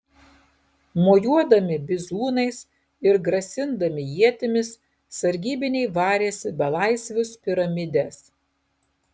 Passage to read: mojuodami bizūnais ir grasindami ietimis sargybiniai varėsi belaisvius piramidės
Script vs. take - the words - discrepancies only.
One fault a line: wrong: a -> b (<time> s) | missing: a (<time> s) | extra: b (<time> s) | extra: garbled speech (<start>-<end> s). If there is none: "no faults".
no faults